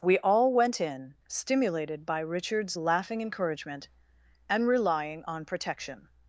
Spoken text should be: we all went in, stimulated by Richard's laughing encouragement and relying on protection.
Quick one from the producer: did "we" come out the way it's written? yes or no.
yes